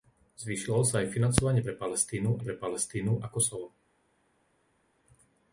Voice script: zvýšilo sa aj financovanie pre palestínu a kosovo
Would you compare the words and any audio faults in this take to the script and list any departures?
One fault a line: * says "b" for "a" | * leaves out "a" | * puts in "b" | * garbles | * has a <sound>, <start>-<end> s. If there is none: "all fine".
* puts in "pre palestínu"